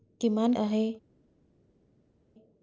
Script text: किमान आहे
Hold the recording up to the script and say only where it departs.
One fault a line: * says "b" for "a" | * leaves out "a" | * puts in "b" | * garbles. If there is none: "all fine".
all fine